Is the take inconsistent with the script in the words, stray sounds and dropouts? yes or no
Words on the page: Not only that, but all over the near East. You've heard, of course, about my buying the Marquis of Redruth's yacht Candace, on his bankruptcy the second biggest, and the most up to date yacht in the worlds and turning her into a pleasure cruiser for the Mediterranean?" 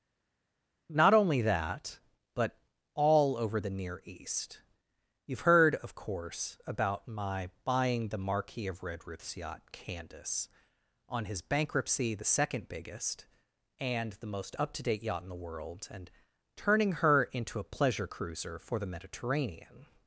yes